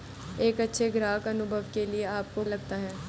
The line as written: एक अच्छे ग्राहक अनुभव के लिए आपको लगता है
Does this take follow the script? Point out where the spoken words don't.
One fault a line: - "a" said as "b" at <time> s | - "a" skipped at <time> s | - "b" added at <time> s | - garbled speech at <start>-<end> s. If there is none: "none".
none